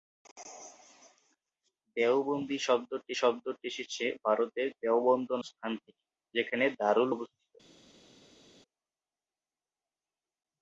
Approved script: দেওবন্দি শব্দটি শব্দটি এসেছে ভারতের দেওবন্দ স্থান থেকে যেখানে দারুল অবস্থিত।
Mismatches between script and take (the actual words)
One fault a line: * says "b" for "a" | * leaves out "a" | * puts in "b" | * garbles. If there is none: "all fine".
all fine